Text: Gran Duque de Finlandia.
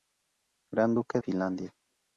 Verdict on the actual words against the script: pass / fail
fail